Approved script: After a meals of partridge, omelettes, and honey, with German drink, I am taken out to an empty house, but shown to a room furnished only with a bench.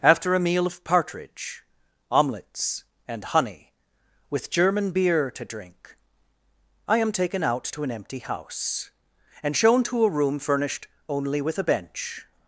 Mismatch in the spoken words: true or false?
true